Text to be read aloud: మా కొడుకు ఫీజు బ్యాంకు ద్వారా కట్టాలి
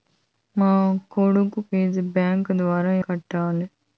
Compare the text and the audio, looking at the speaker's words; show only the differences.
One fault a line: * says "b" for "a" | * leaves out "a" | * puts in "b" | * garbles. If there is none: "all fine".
all fine